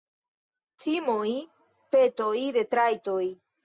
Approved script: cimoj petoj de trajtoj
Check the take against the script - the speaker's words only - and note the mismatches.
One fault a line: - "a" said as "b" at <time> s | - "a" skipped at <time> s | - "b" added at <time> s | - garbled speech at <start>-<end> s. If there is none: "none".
none